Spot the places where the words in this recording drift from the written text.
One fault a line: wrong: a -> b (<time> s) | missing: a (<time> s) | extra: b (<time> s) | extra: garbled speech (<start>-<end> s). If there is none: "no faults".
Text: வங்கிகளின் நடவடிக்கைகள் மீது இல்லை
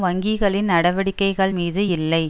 no faults